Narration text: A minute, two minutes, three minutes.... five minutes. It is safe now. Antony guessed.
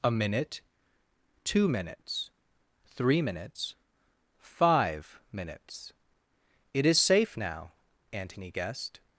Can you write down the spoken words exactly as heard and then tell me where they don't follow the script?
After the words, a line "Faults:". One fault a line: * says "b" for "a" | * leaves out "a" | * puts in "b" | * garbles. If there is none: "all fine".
A minute, two minutes, three minutes.... five minutes. It is safe now. Antony guessed.
Faults:
all fine